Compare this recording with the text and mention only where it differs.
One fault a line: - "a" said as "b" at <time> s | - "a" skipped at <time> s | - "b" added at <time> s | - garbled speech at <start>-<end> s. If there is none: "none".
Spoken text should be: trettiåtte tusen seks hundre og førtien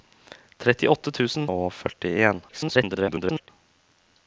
- "seks hundre" skipped at 1.4 s
- garbled speech at 2.5-3.5 s